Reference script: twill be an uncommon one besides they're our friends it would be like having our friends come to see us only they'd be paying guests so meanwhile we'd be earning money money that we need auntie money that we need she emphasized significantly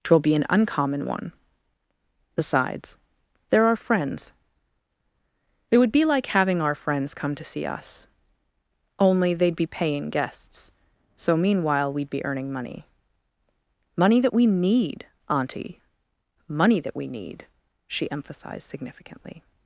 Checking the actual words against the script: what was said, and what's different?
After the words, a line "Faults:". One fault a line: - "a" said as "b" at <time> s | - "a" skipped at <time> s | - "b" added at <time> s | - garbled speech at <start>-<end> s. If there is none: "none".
twill be an uncommon one besides they're our friends it would be like having our friends come to see us only they'd be paying guests so meanwhile we'd be earning money money that we need auntie money that we need she emphasized significantly
Faults:
none